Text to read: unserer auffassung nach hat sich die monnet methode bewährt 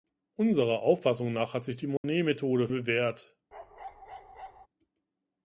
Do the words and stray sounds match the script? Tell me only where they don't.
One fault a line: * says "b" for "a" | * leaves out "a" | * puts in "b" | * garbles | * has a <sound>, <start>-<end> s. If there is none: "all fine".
* has a dropout, 2.0-2.0 s
* has a bark, 3.5-4.7 s